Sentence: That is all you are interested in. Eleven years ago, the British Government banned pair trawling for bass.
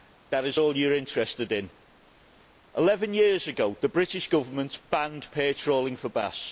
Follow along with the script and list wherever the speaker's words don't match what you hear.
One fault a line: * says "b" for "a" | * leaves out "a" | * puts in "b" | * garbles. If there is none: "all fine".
all fine